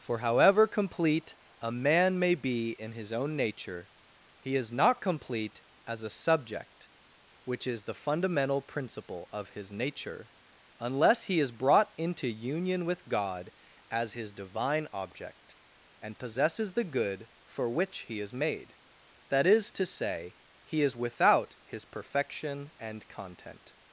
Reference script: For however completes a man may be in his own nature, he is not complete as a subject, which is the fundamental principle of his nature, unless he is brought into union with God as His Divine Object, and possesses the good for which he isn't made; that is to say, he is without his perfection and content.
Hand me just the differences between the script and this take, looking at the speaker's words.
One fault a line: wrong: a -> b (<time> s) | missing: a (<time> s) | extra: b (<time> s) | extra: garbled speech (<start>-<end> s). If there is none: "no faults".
wrong: completes -> complete (0.7 s)
wrong: isn't -> is (18.2 s)